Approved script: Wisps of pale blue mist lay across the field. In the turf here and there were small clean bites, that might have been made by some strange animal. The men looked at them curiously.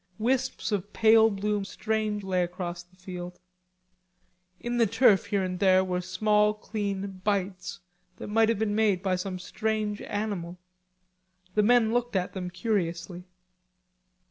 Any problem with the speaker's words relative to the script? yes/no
yes